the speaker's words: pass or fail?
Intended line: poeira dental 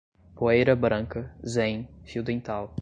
fail